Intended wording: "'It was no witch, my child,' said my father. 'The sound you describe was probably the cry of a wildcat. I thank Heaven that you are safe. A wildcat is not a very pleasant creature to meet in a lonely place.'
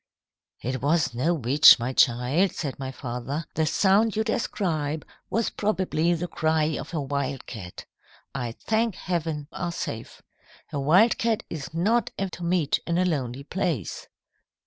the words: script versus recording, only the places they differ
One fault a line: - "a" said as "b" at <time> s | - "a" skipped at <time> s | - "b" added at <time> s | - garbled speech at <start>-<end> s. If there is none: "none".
- "that you" skipped at 9.5 s
- "very pleasant creature" skipped at 12.3 s